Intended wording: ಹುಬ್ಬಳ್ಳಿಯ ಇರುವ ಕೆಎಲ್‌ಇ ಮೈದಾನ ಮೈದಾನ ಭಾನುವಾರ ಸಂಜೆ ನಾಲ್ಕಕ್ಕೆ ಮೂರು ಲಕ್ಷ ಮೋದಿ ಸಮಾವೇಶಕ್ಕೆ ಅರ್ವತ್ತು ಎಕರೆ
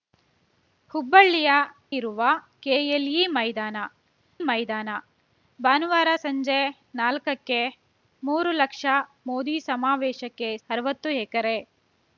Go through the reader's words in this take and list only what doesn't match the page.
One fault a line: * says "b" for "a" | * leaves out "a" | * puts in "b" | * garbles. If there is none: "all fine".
all fine